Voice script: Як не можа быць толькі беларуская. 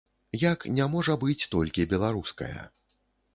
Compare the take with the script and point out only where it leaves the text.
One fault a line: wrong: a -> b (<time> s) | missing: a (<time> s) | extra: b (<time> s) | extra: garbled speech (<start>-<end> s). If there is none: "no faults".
no faults